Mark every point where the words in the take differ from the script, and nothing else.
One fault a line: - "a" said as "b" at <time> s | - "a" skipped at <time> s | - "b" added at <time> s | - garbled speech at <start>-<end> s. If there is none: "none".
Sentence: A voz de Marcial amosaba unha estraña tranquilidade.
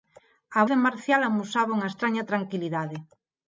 - "voz" skipped at 0.6 s